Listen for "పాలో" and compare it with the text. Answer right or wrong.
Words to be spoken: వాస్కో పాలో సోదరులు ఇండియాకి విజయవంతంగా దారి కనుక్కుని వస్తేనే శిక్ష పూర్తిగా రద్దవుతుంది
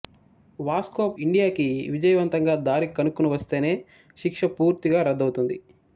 wrong